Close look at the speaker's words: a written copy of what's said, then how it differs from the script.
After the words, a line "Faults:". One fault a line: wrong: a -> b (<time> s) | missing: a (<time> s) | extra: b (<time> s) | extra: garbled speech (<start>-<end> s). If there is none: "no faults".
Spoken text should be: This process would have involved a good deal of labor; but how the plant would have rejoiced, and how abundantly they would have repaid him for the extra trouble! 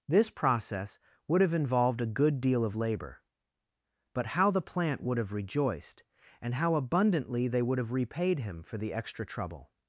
This process would have involved a good deal of labor; but how the plant would have rejoiced, and how abundantly they would have repaid him for the extra trouble!
Faults:
no faults